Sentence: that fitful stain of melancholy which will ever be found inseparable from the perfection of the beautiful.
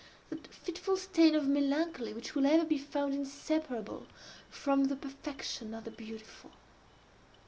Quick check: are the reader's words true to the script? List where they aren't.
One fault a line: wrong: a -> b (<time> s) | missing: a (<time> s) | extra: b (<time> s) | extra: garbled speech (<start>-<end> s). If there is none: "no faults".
no faults